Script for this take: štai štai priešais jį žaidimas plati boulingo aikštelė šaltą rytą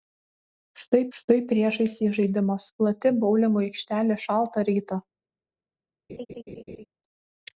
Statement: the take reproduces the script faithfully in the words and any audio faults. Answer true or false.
false